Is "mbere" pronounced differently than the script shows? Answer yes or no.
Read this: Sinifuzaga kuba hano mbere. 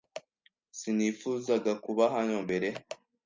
no